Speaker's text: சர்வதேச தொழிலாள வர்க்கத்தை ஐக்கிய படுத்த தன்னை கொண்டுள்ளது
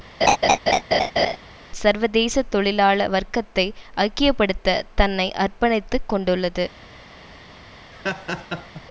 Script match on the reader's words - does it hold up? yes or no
no